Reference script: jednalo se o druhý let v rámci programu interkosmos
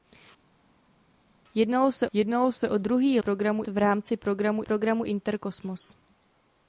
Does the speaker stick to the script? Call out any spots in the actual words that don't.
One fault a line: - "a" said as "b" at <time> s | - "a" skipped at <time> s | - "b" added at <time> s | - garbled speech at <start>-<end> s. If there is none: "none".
- "jednalo se" added at 2.1 s
- "let" said as "programu" at 3.2 s
- "programu" added at 4.6 s